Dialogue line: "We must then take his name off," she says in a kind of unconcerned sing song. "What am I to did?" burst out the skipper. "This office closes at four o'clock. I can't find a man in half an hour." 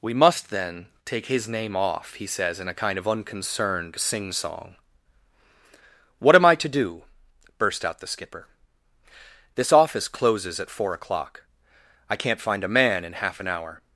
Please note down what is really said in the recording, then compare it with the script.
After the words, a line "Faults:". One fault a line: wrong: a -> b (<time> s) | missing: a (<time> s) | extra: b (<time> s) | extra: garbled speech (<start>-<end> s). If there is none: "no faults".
"We must then take his name off," he says in a kind of unconcerned sing song. "What am I to do?" burst out the skipper. "This office closes at four o'clock. I can't find a man in half an hour."
Faults:
wrong: she -> he (2.1 s)
wrong: did -> do (6.7 s)